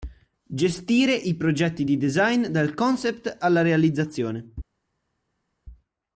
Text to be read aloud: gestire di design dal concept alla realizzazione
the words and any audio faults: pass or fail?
fail